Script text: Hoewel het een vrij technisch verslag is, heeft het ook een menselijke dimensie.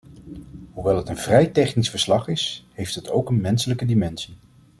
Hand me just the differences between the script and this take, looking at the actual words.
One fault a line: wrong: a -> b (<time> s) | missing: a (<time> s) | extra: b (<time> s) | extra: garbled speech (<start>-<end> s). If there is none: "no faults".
no faults